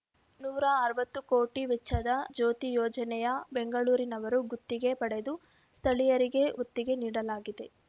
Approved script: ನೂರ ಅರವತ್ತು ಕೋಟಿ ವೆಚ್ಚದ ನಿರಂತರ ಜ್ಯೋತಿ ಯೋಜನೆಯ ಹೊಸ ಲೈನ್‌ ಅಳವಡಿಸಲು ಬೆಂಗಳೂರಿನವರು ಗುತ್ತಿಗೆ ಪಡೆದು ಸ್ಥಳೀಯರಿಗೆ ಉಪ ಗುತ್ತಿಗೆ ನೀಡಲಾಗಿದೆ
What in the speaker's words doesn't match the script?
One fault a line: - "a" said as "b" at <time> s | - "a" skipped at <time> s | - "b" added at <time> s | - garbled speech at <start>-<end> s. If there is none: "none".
- "ನಿರಂತರ" skipped at 2.1 s
- "ಹೊಸ ಲೈನ್ ಅಳವಡಿಸಲು" skipped at 3.3 s
- "ಉಪ" skipped at 6.5 s